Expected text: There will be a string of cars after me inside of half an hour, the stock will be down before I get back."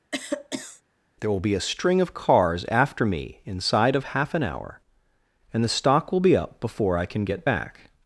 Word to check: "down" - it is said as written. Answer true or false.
false